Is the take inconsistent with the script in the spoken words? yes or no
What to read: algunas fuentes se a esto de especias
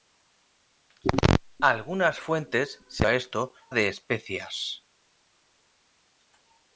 no